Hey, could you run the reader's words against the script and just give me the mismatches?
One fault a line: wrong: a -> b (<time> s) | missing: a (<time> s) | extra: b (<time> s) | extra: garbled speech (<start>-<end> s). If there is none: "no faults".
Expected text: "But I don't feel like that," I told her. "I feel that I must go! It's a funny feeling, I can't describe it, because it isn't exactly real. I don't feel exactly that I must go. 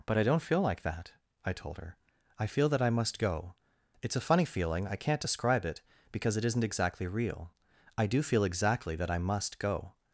wrong: don't -> do (8.1 s)